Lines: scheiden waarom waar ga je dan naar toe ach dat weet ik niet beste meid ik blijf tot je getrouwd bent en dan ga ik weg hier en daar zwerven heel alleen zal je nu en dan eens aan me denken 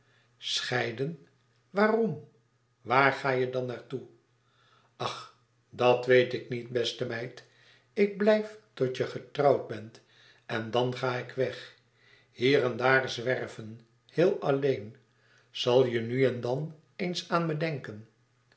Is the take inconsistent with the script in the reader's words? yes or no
no